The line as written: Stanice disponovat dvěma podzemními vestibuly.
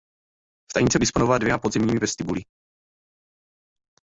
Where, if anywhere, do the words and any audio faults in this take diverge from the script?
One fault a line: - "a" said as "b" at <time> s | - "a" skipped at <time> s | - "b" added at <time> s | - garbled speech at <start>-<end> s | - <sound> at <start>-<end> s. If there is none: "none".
none